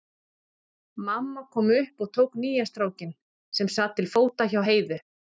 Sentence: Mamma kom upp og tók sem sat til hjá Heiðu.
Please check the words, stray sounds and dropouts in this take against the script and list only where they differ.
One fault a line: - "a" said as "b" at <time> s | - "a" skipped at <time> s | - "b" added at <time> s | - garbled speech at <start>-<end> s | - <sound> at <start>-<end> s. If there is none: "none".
- "nýja strákinn" added at 2.5 s
- "fóta" added at 4.2 s